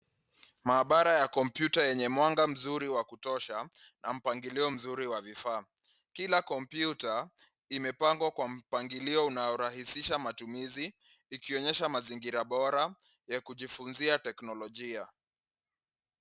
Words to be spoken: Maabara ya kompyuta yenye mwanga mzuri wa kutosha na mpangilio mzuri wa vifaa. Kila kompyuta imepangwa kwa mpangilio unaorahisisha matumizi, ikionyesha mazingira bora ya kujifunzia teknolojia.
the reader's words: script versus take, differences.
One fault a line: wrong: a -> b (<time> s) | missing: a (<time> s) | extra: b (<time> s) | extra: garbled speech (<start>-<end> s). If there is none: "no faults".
no faults